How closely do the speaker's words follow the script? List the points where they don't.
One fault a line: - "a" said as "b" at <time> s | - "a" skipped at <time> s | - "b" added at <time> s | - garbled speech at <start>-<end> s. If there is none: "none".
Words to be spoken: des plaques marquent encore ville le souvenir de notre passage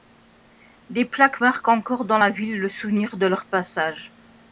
- "dans la" added at 2.0 s
- "notre" said as "leur" at 3.3 s